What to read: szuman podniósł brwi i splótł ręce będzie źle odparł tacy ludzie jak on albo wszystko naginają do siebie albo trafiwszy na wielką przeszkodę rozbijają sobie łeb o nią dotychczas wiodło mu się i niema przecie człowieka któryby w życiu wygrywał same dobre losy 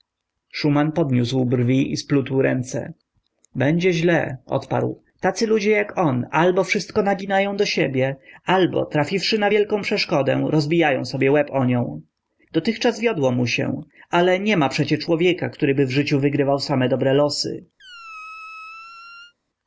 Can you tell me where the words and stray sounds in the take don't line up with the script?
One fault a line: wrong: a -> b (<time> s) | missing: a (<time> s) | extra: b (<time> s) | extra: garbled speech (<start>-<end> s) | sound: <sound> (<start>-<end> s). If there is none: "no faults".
wrong: i -> ale (14.1 s)
sound: squeak (17.8-19.3 s)